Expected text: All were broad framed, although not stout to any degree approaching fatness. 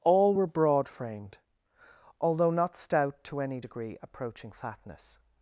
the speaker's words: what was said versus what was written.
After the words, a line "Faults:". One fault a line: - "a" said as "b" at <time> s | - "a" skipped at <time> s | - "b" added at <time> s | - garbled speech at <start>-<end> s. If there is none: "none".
All were broad framed, although not stout to any degree approaching fatness.
Faults:
none